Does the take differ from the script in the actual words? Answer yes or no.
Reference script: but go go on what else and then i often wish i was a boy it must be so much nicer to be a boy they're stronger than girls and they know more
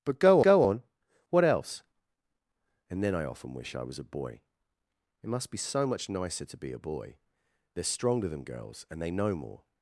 no